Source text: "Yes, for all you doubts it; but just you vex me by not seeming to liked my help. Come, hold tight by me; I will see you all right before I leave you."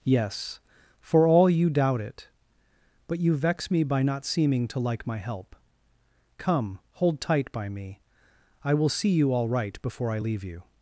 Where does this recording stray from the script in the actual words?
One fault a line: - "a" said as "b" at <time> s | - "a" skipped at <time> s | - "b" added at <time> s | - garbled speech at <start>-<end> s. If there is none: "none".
- "doubts" said as "doubt" at 1.7 s
- "just" skipped at 3.2 s
- "liked" said as "like" at 4.8 s